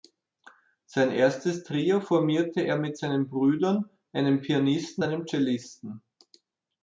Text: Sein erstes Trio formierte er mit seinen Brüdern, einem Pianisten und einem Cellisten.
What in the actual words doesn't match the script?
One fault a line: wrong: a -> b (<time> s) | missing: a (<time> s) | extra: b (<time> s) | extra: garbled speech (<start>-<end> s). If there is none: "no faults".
missing: und (5.0 s)